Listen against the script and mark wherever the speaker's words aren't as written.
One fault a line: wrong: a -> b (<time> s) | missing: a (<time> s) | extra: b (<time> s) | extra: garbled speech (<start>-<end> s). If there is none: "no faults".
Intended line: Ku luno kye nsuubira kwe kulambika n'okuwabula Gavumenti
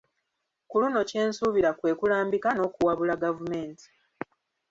no faults